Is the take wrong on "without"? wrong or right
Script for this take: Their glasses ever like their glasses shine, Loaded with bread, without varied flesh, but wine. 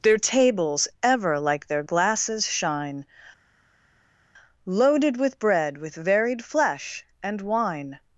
wrong